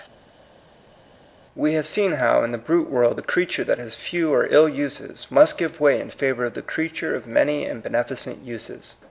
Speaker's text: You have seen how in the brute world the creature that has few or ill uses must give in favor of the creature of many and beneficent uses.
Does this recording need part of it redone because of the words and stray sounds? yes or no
yes